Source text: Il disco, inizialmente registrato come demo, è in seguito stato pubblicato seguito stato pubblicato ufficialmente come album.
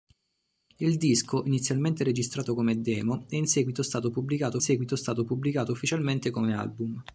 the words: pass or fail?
pass